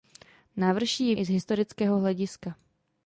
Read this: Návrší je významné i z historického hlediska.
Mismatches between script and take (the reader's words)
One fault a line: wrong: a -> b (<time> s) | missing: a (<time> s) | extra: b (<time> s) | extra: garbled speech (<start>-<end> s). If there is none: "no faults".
missing: významné (1.1 s)